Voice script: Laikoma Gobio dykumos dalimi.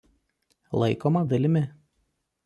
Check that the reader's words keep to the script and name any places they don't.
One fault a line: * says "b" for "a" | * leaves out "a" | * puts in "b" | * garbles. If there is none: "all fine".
* leaves out "Gobio dykumos"